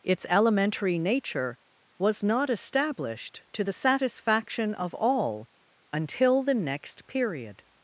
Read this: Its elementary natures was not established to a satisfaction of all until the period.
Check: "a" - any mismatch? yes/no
yes